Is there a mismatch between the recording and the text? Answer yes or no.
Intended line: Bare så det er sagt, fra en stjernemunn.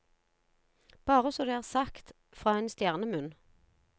no